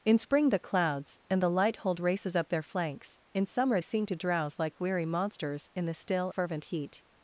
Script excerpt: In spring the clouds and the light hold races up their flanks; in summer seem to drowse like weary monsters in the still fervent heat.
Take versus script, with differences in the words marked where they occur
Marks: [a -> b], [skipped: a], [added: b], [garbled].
In spring the clouds and the light hold races up their flanks; in summer seem to drowse like weary monsters in the still fervent heat.